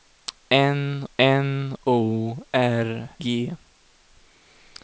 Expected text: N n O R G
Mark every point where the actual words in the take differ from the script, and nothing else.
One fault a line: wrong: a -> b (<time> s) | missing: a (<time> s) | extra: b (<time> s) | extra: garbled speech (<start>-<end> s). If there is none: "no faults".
no faults